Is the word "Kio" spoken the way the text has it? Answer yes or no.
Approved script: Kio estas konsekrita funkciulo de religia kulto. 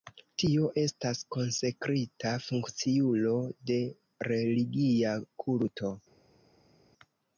no